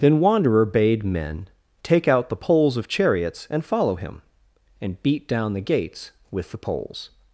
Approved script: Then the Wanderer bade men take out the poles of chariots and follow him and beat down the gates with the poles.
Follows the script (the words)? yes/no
no